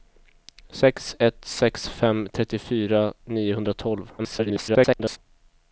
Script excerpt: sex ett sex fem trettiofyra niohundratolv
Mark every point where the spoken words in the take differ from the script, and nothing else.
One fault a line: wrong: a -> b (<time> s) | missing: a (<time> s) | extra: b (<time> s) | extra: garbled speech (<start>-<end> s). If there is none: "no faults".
extra: garbled speech (4.2-5.2 s)